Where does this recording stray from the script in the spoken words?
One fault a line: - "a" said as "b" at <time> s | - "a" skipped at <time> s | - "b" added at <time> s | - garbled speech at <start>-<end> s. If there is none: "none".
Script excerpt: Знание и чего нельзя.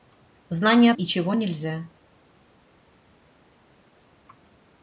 none